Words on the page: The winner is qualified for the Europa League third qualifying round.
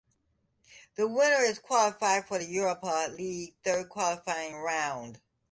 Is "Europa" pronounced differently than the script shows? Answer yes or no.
no